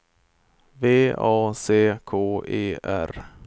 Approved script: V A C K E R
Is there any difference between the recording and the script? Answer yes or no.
no